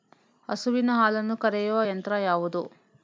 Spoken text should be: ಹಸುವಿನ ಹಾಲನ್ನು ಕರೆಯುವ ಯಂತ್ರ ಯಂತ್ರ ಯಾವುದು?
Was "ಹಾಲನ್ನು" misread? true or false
false